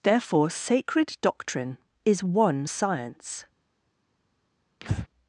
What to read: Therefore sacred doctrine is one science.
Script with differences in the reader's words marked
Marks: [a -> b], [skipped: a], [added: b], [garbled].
Therefore sacred doctrine is one science.